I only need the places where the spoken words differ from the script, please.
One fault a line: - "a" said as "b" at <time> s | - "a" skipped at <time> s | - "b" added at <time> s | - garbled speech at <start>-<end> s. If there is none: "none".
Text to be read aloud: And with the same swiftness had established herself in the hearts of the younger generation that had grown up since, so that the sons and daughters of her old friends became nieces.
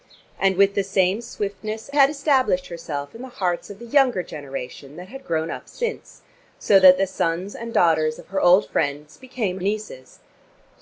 none